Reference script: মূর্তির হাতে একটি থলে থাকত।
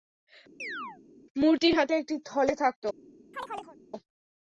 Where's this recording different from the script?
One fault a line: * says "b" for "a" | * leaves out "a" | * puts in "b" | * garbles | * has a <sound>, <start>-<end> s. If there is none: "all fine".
* has a chirp, 0.6-1.0 s
* has a chirp, 3.3-3.8 s